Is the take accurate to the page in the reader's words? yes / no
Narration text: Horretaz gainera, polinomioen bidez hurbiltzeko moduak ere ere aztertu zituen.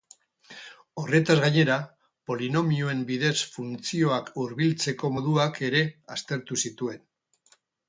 no